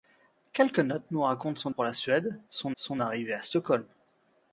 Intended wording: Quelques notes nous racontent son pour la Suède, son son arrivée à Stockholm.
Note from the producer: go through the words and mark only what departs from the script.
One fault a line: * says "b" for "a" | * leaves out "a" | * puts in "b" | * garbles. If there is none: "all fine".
all fine